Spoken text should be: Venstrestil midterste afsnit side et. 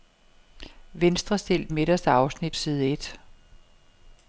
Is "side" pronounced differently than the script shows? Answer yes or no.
no